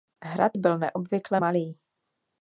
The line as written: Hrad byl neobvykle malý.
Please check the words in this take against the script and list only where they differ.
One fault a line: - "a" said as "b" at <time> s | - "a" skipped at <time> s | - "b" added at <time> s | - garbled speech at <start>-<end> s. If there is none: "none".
none